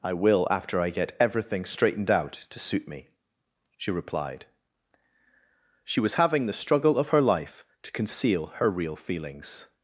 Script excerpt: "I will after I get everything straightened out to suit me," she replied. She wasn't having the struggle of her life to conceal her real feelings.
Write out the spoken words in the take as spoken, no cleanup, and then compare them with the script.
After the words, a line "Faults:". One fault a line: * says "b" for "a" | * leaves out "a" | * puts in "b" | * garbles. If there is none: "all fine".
"I will after I get everything straightened out to suit me," she replied. She was having the struggle of her life to conceal her real feelings.
Faults:
* says "was" for "wasn't"